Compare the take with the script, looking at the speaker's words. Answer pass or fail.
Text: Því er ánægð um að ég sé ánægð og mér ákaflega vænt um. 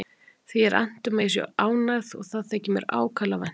fail